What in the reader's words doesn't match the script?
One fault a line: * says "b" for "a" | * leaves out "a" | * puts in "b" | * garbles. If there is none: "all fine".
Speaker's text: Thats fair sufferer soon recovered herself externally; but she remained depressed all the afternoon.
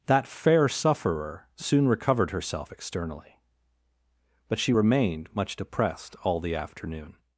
* says "That" for "Thats"
* puts in "much"